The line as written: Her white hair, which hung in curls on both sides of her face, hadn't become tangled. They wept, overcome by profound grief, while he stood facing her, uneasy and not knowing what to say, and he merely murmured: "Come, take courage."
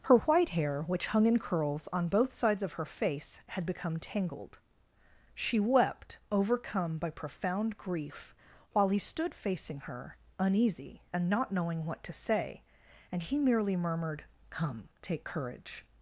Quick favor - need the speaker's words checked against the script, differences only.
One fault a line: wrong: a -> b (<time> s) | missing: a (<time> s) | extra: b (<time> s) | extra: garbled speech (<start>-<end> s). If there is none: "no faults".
wrong: hadn't -> had (3.5 s)
wrong: They -> She (5.3 s)